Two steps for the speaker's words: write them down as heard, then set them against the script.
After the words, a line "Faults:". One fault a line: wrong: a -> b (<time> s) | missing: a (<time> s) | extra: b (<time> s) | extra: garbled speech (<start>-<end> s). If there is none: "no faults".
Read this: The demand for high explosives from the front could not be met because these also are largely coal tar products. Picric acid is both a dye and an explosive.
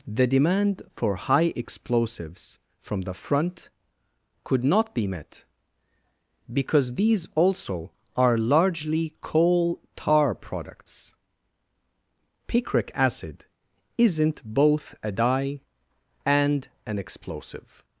The demand for high explosives from the front could not be met because these also are largely coal tar products. Picric acid isn't both a dye and an explosive.
Faults:
wrong: is -> isn't (14.0 s)